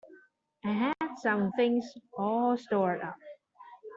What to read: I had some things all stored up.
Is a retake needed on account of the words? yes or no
no